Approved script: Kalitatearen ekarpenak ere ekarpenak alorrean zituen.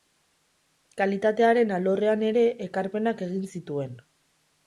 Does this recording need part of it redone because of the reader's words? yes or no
yes